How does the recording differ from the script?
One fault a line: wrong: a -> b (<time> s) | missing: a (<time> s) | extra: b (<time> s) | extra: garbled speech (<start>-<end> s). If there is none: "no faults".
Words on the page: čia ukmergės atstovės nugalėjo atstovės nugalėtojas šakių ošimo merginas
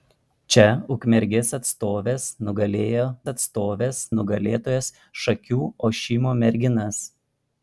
no faults